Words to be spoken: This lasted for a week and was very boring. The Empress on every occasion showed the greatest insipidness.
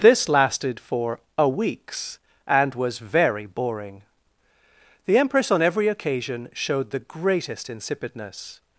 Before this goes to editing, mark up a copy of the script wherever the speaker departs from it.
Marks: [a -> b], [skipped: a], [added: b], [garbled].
This lasted for a [week -> weeks] and was very boring. The Empress on every occasion showed the greatest insipidness.